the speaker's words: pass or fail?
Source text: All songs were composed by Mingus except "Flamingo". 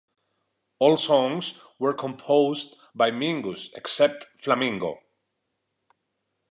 pass